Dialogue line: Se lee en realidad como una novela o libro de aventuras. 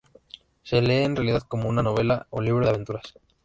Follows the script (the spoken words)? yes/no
yes